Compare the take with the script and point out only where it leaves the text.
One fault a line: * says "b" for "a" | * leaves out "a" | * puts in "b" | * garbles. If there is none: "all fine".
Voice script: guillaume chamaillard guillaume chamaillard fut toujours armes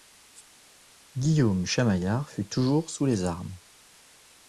* says "fut toujours sous les" for "guillaume chamaillard fut toujours"